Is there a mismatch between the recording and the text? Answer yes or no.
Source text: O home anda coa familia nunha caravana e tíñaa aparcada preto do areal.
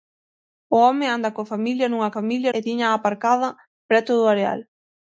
yes